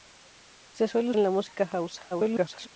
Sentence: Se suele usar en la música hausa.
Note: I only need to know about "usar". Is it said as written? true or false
false